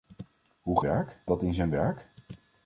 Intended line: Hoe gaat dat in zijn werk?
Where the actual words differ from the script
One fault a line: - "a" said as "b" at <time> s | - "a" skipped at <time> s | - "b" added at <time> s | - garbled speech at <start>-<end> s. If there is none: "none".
- "gaat" said as "werk" at 0.8 s